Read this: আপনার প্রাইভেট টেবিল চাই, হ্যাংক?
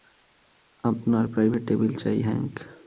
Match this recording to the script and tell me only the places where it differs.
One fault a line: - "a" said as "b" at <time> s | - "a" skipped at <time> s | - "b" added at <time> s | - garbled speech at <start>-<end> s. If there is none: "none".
none